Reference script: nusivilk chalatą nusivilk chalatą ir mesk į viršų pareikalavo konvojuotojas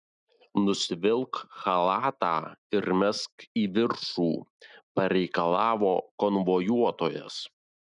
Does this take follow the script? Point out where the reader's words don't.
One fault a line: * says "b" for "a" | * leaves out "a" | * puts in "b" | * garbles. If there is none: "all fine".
* leaves out "nusivilk chalatą"